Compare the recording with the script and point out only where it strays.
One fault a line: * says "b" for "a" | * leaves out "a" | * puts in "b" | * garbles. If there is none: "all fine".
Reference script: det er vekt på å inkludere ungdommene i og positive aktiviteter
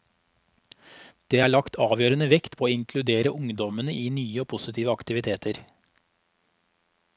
* puts in "lagt avgjørende"
* puts in "nye"